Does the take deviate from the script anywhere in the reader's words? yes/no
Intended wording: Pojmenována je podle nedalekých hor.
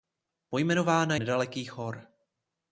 yes